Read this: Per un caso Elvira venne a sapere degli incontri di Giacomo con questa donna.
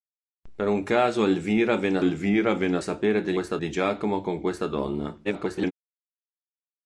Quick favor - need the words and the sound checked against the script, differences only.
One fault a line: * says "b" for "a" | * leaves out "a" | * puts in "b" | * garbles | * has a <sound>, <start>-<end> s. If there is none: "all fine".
* puts in "Elvira venne"
* says "questa" for "incontri"
* garbles